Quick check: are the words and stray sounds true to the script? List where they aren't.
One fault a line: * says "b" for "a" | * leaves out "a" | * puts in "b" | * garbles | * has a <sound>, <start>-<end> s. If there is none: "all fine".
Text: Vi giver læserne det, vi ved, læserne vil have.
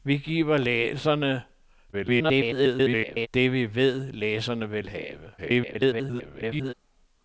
* garbles
* garbles